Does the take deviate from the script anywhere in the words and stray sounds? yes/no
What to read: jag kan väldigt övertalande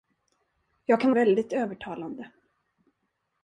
no